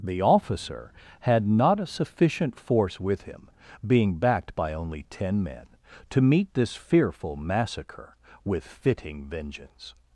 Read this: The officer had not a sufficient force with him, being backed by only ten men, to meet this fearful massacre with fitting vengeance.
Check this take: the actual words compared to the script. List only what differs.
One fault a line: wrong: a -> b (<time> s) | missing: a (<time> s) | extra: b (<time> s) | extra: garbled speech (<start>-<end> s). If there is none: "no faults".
no faults